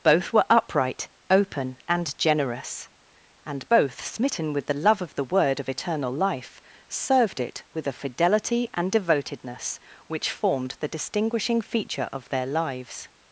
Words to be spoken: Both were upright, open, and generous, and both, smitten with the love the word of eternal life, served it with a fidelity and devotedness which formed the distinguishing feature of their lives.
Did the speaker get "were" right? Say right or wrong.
right